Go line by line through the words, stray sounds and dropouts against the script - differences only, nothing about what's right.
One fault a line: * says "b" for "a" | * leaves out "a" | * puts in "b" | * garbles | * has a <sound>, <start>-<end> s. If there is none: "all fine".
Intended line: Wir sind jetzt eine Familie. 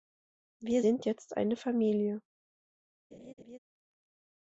* has a laugh, 3.1-3.6 s